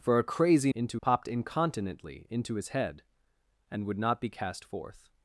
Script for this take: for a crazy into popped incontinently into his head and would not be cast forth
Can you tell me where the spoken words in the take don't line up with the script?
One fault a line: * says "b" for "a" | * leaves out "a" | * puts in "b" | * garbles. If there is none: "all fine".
all fine